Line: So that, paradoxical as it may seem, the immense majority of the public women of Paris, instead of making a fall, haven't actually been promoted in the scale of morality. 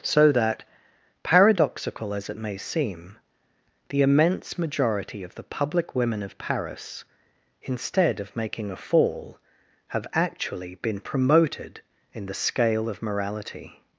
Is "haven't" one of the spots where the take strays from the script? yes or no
yes